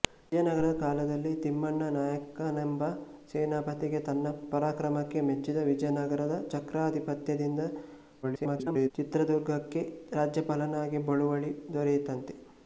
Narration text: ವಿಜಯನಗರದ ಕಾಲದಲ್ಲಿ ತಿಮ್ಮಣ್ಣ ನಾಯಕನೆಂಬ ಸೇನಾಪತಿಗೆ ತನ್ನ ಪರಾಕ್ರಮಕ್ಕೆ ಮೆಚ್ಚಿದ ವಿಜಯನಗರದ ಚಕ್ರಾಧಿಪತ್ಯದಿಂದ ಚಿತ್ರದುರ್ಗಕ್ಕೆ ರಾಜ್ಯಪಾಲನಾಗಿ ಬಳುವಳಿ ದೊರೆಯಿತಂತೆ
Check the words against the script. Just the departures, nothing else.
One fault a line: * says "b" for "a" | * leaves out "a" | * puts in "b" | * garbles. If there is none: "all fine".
* garbles